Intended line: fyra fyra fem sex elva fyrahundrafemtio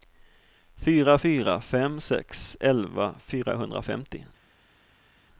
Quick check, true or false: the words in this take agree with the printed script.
true